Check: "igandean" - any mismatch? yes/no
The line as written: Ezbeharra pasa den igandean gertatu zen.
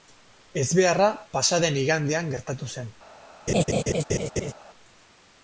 no